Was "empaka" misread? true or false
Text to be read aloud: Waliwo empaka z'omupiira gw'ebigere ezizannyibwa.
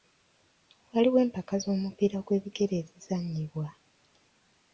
false